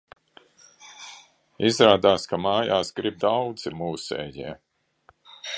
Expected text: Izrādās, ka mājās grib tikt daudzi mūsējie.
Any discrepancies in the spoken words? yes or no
yes